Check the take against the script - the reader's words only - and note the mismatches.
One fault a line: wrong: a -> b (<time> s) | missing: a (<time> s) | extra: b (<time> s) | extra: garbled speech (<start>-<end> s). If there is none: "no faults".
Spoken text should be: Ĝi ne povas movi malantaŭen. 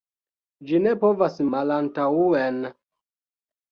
missing: movi (1.4 s)